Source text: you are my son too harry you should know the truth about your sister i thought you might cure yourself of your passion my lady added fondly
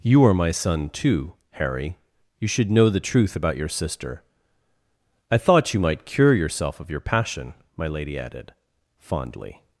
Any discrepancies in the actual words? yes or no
no